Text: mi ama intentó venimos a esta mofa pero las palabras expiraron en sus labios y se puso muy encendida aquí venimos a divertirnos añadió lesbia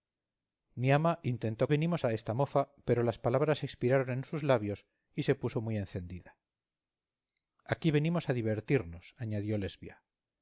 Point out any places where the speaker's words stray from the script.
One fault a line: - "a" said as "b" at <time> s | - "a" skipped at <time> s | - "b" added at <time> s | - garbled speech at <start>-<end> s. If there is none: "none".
none